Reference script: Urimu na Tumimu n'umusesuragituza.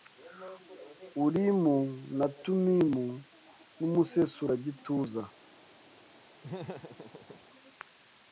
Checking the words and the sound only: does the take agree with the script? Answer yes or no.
no